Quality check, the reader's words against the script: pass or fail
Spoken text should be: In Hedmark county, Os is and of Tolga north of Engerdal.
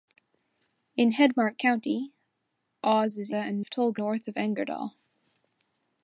pass